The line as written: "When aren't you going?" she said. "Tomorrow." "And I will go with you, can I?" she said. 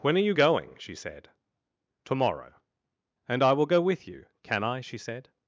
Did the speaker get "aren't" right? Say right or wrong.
wrong